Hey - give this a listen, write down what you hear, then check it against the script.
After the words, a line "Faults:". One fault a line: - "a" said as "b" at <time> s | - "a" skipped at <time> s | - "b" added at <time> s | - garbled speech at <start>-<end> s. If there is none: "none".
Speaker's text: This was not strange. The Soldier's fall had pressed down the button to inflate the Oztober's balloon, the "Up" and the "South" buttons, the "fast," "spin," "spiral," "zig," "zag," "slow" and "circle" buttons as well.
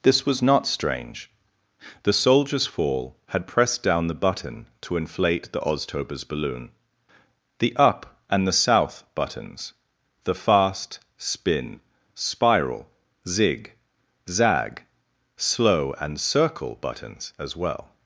This was not strange. The Soldier's fall had pressed down the button to inflate the Oztober's balloon, the "Up" and the "South" buttons, the "fast," "spin," "spiral," "zig," "zag," "slow" and "circle" buttons as well.
Faults:
none